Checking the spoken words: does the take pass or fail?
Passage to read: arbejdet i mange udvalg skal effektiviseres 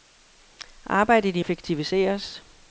fail